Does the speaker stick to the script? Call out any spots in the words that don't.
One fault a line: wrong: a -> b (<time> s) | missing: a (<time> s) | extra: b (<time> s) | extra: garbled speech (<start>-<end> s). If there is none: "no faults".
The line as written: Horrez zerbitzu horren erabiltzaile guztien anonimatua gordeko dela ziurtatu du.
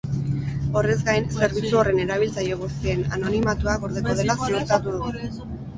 extra: gain (1.1 s)